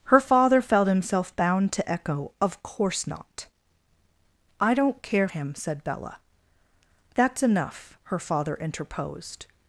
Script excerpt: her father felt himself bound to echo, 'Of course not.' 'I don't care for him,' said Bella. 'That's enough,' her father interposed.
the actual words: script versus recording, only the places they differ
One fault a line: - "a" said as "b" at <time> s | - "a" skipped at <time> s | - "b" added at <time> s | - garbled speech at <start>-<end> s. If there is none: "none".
- "for" skipped at 5.3 s